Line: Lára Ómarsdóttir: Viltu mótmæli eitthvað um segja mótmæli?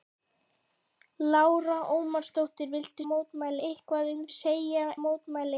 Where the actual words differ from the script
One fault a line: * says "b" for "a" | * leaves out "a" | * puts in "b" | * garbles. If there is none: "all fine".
all fine